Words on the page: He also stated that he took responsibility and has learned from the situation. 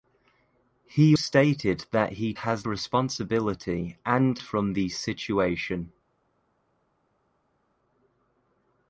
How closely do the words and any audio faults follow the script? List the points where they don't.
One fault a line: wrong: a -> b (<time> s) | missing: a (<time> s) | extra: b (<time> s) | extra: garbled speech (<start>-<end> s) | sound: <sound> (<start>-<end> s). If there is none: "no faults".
missing: also (1.1 s)
wrong: took -> has (2.3 s)
missing: has learned (4.4 s)